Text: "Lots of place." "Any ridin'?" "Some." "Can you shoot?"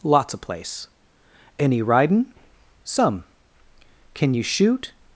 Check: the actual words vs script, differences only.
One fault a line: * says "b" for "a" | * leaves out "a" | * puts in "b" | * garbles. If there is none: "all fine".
all fine